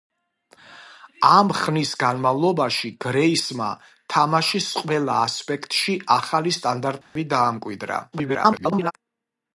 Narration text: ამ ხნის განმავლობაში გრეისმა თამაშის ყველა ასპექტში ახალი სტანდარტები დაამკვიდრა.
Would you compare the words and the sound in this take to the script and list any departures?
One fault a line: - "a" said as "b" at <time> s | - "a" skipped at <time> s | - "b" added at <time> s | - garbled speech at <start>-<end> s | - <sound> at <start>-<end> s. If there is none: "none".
- dropout at 7.0-7.2 s
- garbled speech at 8.1-8.9 s